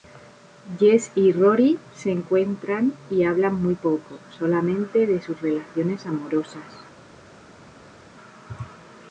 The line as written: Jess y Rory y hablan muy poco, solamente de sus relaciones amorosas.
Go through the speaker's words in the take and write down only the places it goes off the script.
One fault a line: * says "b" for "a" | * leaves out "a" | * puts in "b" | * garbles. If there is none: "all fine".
* puts in "se encuentran"